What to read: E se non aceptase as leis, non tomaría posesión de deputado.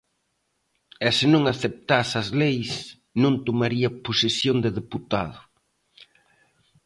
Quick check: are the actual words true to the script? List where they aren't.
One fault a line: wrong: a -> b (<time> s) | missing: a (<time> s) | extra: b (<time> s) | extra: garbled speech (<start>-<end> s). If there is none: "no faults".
no faults